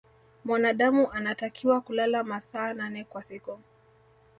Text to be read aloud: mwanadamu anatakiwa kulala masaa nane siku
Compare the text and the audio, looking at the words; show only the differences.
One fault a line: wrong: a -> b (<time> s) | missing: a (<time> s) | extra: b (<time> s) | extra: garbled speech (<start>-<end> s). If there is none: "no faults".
extra: kwa (3.0 s)